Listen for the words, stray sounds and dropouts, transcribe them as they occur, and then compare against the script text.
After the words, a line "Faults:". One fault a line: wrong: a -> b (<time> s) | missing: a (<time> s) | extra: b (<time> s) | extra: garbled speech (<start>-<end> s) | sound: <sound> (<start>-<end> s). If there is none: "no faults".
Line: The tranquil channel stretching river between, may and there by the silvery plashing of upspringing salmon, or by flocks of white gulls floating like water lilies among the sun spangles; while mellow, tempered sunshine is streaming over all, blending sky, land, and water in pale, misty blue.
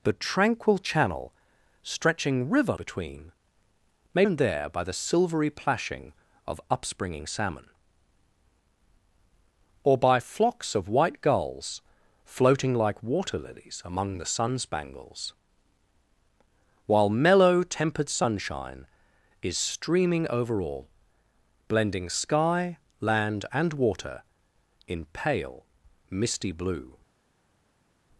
The tranquil channel stretching river between, may and there by the silvery plashing of upspringing salmon, or by flocks of white gulls floating like water lilies among the sun spangles; while mellow, tempered sunshine is streaming over all, blending sky, land, and water in pale, misty blue.
Faults:
no faults